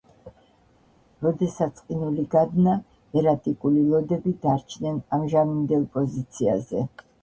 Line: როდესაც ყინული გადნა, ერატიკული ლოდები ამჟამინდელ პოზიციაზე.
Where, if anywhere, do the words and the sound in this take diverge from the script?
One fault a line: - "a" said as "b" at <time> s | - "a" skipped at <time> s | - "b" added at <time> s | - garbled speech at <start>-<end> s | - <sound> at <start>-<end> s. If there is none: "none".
- "დარჩნენ" added at 4.5 s